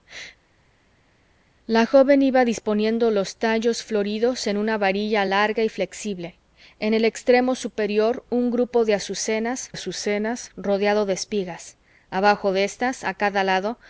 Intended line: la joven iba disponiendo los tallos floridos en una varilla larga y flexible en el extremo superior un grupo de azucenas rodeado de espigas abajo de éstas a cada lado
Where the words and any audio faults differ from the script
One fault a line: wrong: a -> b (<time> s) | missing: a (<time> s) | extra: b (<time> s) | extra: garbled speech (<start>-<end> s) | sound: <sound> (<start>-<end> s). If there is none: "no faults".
extra: azucenas (9.7 s)